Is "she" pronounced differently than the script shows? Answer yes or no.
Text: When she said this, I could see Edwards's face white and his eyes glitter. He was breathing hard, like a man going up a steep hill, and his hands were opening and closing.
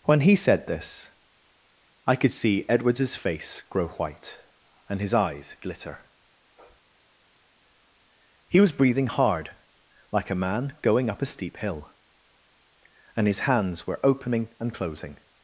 yes